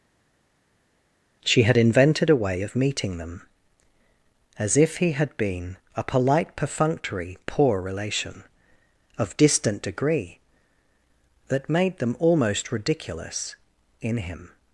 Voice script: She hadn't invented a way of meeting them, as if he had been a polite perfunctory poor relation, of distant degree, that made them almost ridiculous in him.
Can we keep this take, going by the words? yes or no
no